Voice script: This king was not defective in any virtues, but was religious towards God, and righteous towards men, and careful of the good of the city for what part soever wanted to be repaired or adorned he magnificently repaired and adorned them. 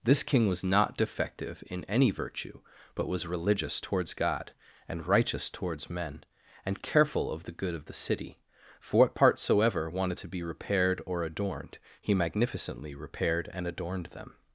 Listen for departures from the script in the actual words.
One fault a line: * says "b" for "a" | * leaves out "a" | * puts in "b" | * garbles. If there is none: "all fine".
* says "virtue" for "virtues"